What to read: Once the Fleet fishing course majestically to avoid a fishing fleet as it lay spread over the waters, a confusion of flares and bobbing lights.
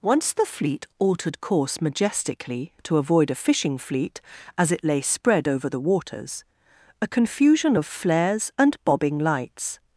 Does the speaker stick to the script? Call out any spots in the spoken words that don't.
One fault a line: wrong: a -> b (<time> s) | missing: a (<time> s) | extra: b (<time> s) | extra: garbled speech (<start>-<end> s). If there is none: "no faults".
wrong: fishing -> altered (1.0 s)